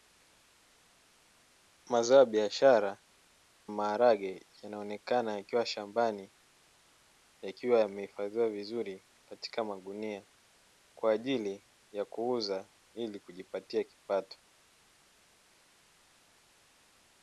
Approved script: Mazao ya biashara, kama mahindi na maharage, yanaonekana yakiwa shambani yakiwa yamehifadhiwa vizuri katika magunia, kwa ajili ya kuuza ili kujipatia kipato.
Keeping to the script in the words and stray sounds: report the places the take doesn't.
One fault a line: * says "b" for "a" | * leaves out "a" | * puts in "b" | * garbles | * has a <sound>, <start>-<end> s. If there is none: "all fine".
* leaves out "kama mahindi na"